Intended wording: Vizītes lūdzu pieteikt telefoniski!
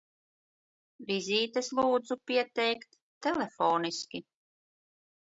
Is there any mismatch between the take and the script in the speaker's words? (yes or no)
no